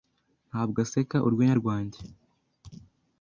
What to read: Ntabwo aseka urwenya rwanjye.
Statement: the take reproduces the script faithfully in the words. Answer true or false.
true